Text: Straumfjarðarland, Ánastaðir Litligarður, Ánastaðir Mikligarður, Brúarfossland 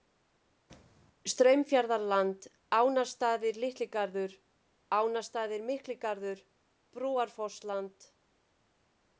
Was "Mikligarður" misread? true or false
false